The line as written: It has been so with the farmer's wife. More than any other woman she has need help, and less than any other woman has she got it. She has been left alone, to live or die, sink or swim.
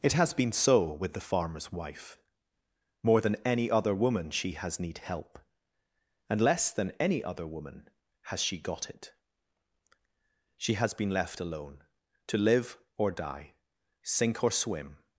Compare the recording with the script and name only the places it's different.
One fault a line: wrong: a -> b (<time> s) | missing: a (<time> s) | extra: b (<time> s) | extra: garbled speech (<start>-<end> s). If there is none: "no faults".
no faults